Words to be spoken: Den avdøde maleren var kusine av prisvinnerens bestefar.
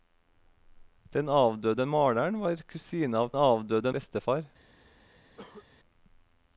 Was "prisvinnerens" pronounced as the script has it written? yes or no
no